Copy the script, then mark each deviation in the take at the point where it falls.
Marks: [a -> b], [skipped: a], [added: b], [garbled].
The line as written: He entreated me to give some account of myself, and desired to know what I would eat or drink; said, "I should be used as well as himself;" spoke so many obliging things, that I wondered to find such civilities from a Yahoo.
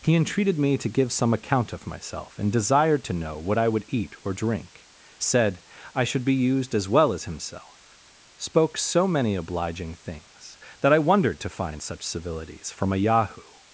He entreated me to give some account of myself, and desired to know what I would eat or drink; said, "I should be used as well as himself;" spoke so many obliging things, that I wondered to find such civilities from a Yahoo.